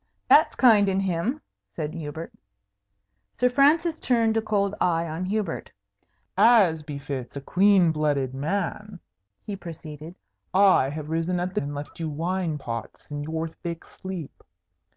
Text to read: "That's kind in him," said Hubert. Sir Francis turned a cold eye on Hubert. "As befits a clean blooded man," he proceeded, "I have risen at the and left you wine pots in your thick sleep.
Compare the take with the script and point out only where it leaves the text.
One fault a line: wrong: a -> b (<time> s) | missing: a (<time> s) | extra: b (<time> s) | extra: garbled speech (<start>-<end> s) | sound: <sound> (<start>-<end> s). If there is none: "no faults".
no faults